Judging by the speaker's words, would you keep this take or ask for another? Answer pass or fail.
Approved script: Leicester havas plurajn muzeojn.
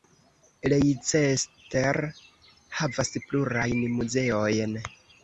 pass